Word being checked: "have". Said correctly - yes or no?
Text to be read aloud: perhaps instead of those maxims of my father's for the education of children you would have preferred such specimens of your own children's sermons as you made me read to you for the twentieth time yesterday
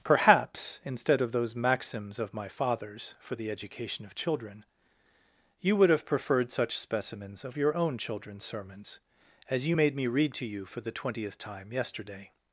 yes